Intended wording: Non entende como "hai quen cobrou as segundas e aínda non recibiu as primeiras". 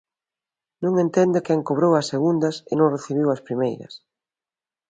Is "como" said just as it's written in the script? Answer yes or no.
no